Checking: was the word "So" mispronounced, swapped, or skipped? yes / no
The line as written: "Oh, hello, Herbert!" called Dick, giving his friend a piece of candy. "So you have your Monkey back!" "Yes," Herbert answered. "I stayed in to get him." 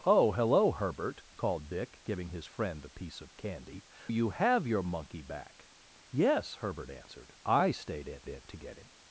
yes